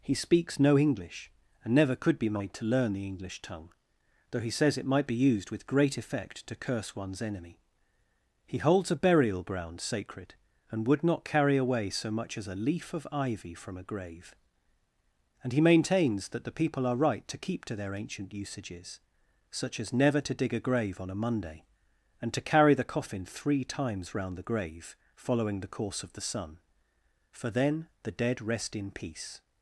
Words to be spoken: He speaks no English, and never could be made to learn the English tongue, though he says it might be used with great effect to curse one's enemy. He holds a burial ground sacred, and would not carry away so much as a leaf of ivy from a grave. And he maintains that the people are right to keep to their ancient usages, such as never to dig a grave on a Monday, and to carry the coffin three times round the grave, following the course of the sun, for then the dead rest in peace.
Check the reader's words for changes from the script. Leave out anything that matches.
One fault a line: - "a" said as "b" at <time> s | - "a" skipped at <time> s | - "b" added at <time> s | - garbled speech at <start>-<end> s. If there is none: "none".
none